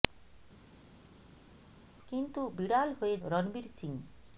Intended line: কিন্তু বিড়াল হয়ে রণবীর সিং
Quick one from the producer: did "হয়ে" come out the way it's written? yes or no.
yes